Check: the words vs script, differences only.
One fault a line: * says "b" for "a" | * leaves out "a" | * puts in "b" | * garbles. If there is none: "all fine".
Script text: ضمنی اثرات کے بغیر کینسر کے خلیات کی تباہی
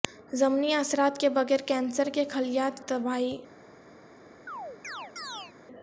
* leaves out "کی"